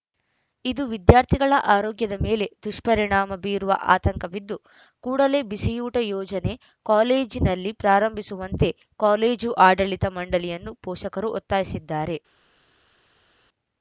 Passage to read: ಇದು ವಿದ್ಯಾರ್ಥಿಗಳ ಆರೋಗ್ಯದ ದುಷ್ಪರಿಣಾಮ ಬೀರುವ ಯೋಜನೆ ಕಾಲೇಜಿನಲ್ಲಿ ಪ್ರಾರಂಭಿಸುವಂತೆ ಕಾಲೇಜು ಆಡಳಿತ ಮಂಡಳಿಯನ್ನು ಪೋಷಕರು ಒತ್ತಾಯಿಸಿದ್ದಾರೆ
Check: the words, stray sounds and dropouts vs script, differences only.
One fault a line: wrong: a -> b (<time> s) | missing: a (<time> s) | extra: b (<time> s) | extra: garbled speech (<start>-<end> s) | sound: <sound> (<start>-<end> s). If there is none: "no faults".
extra: ಮೇಲೆ (2.2 s)
extra: ಆತಂಕವಿದ್ದು ಕೂಡಲೇ ಬಿಸಿಯೂಟ (4.0 s)